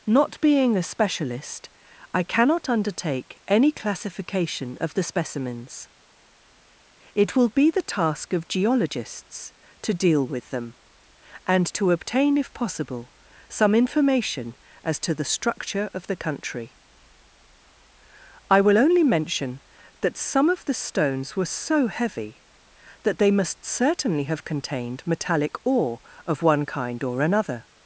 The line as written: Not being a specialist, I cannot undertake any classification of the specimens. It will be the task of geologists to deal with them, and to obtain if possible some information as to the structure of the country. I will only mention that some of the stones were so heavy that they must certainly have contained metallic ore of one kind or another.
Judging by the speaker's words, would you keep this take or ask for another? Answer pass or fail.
pass